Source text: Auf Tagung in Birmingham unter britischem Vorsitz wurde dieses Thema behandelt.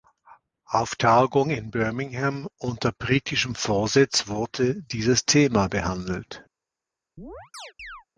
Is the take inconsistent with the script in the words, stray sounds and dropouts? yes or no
yes